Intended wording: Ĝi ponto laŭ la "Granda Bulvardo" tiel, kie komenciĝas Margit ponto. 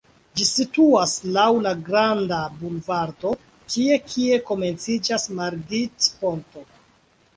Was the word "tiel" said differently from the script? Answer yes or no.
yes